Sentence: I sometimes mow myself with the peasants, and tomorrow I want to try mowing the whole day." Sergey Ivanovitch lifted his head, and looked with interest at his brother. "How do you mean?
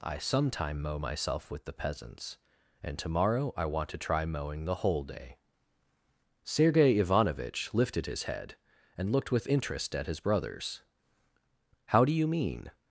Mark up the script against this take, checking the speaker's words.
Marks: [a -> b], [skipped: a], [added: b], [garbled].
I [sometimes -> sometime] mow myself with the peasants, and tomorrow I want to try mowing the whole day." Sergey Ivanovitch lifted his head, and looked with interest at his [brother. -> brothers] "How do you mean?